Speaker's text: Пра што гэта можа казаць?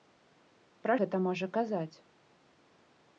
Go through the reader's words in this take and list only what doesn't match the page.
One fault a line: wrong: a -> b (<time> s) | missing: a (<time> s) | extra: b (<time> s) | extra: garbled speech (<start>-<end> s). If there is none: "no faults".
missing: што (0.9 s)